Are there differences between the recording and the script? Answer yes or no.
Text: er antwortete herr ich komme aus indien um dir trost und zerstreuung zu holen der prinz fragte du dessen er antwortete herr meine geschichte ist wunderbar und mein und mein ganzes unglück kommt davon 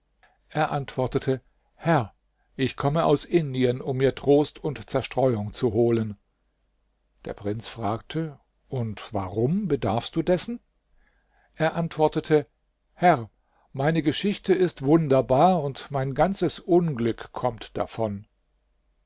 yes